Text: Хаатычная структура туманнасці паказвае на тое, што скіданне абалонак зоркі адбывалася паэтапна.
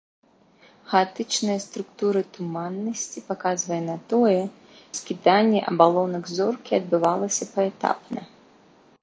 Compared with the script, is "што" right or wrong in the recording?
wrong